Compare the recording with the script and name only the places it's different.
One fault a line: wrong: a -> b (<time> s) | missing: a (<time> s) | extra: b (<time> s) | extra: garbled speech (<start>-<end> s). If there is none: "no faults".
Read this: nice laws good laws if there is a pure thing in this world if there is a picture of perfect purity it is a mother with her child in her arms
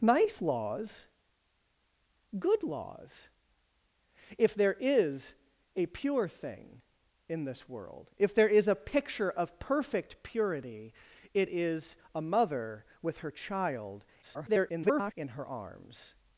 extra: garbled speech (14.2-15.1 s)